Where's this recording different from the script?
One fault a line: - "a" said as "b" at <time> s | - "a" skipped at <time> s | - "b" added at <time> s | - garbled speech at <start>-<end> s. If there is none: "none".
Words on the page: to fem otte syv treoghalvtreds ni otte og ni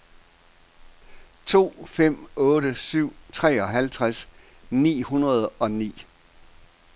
- "otte" said as "hundrede" at 5.0 s